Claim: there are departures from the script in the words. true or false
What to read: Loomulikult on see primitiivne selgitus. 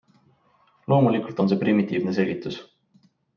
false